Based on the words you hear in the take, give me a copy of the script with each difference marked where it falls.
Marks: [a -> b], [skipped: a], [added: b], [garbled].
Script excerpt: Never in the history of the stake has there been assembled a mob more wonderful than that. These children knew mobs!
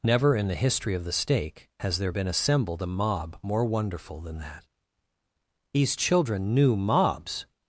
Never in the history of the stake has there been assembled a mob more wonderful than that. These children knew mobs!